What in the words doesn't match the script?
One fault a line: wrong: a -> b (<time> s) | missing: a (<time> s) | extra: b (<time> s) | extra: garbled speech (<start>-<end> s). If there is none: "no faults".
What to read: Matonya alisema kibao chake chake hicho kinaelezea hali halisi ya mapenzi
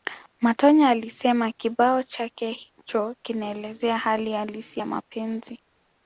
missing: chake (2.5 s)